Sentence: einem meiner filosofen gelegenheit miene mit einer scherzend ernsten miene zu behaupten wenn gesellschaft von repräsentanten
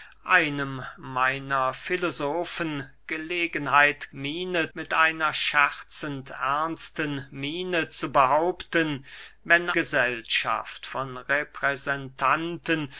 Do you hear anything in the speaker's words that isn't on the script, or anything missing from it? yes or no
no